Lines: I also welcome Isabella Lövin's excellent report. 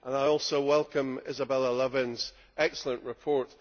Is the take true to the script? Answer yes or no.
yes